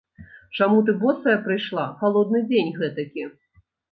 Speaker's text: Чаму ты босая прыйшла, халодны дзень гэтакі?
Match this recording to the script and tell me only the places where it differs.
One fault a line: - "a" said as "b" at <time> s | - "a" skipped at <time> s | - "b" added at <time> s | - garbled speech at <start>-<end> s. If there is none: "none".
none